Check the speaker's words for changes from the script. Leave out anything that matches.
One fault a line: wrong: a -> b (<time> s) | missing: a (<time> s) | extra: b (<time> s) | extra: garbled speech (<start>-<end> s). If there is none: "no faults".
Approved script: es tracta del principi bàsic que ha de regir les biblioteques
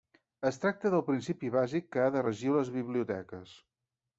no faults